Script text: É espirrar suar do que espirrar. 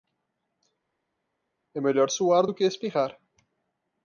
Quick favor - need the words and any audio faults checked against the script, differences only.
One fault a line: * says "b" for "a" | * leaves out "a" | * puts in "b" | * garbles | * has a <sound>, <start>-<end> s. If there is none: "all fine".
* says "melhor" for "espirrar"